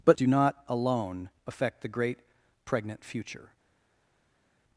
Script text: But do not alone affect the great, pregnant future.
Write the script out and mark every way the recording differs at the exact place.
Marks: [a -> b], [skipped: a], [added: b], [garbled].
But do not alone affect the great, pregnant future.